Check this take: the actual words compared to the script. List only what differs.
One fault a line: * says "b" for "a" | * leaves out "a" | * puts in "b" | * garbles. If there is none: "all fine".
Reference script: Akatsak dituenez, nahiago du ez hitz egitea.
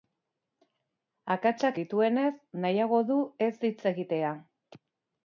all fine